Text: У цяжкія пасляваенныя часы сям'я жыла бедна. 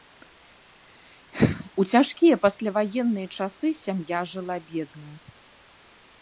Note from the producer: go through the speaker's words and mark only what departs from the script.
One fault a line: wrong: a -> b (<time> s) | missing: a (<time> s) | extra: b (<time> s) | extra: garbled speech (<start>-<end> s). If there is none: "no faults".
no faults